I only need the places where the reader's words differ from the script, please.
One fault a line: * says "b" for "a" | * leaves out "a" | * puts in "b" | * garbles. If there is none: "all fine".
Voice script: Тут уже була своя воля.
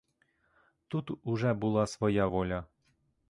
all fine